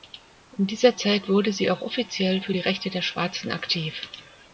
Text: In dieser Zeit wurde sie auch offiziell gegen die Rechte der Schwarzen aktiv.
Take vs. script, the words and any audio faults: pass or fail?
fail